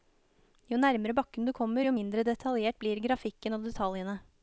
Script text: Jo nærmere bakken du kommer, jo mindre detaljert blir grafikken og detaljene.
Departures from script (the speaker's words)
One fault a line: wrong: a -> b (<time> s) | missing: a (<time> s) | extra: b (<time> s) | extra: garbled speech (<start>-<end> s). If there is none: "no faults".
no faults